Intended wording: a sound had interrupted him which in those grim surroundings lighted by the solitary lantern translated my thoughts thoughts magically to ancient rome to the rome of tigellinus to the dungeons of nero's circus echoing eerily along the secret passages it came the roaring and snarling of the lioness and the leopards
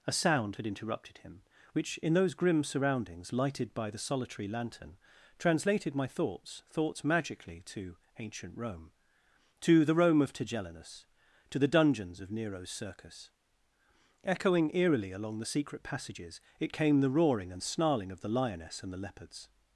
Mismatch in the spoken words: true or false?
false